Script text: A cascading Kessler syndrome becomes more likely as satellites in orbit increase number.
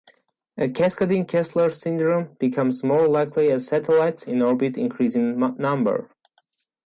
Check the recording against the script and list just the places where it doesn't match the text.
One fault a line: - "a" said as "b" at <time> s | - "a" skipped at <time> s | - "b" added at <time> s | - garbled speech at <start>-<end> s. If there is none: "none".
- "in" added at 5.2 s